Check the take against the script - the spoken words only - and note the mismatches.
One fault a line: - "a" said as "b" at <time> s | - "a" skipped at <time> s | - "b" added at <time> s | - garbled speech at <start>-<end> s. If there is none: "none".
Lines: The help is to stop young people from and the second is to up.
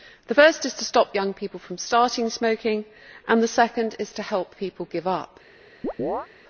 - "help" said as "first" at 0.3 s
- "starting smoking" added at 1.8 s
- "help people give" added at 4.2 s